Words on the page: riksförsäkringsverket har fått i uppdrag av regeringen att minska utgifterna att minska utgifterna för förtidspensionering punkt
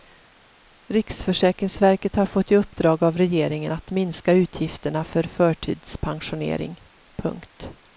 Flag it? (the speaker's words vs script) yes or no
yes